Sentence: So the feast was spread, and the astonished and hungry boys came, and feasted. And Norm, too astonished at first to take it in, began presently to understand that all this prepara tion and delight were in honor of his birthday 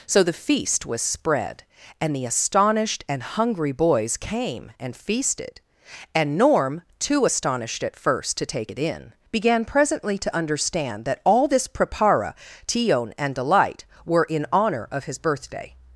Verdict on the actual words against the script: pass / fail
pass